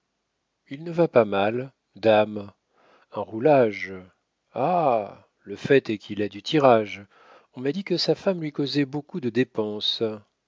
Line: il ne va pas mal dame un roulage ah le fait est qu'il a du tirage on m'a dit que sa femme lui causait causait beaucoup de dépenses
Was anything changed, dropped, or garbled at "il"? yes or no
no